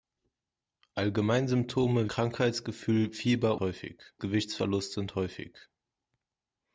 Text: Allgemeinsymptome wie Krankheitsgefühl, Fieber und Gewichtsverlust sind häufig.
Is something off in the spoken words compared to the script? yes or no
yes